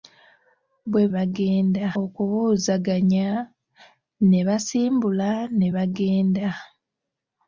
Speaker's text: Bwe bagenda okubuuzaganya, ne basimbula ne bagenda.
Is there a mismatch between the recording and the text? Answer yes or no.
no